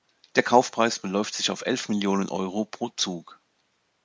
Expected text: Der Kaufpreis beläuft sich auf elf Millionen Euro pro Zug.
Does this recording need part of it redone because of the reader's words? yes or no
no